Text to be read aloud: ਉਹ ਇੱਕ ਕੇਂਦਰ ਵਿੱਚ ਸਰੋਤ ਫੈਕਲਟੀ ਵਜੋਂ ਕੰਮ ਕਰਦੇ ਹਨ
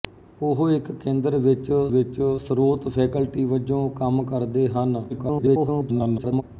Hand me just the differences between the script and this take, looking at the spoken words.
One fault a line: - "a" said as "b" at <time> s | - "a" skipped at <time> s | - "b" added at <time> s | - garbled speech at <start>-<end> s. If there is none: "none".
- "ਵਿੱਚ" added at 1.9 s
- garbled speech at 5.1-6.4 s